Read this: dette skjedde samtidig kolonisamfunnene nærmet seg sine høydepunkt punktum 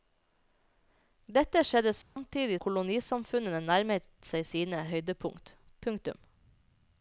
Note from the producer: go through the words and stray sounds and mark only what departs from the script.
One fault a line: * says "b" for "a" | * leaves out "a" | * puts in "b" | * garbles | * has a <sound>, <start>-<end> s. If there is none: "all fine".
* has a dropout, 2.0-2.2 s